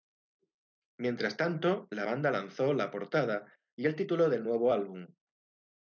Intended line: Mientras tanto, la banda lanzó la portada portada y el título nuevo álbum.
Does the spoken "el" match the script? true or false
true